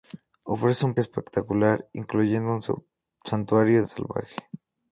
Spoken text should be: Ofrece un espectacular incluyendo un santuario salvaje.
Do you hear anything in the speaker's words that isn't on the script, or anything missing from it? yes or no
no